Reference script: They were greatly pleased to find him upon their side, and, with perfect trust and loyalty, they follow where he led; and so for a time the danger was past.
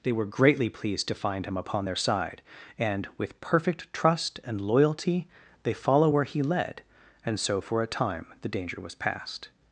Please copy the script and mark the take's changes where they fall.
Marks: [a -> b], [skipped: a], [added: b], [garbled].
They were greatly pleased to find him upon their side, and, with perfect trust and loyalty, they follow where he led; and so for a time the danger was past.